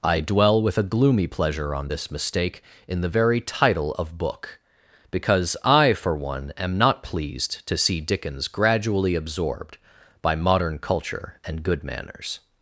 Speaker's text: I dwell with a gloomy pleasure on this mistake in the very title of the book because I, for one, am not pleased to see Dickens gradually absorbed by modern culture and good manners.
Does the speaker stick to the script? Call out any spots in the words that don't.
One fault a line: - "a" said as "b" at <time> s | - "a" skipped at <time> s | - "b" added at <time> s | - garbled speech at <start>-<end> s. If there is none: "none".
- "the" skipped at 4.2 s